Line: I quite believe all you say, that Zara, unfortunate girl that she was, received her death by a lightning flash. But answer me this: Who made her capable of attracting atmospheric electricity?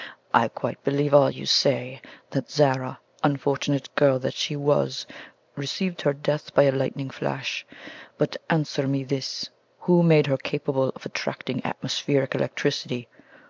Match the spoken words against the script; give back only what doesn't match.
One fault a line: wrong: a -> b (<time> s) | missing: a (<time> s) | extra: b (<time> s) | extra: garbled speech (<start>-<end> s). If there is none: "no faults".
no faults